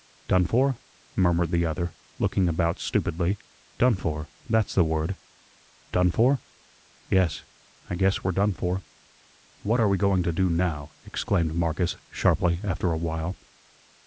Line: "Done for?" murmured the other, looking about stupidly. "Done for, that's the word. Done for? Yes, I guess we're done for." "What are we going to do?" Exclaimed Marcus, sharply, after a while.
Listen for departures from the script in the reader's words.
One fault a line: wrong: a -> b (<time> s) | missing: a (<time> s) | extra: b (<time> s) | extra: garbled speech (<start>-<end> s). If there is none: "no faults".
extra: NOW (10.5 s)